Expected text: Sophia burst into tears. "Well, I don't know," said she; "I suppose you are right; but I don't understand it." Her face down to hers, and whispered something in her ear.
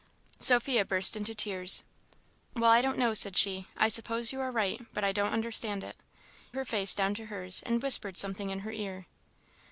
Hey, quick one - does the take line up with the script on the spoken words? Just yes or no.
yes